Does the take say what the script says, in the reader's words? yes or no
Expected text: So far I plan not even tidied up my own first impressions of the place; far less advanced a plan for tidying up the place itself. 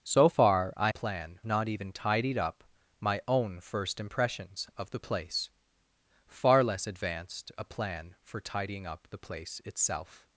yes